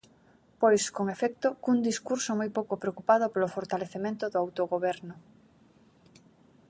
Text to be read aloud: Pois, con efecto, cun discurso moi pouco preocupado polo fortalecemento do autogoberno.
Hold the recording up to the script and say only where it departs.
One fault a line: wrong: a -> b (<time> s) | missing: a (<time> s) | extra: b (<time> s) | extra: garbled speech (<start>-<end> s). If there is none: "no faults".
no faults